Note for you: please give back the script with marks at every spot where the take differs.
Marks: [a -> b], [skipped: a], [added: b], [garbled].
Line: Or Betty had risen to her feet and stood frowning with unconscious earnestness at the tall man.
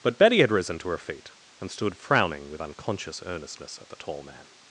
[Or -> But] Betty had risen to her feet and stood frowning with unconscious earnestness at the tall man.